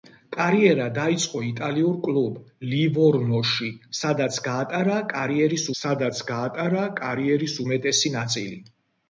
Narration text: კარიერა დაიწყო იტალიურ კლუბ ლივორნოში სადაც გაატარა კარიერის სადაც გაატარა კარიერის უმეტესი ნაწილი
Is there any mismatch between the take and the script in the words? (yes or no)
no